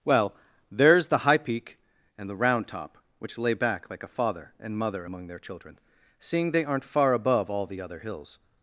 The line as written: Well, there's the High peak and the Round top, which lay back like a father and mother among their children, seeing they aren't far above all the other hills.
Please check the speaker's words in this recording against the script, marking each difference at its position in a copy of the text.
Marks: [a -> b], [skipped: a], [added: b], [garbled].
Well, there's the High peak and the Round top, which lay back like a father and mother among their children, seeing they aren't far above all the other hills.